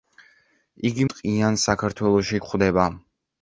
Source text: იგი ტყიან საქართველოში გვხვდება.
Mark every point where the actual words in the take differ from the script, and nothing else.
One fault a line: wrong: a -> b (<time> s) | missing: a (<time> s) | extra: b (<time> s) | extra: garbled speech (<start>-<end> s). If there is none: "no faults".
no faults